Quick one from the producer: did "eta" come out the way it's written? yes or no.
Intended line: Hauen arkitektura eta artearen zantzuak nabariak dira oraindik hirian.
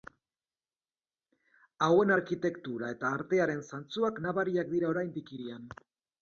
yes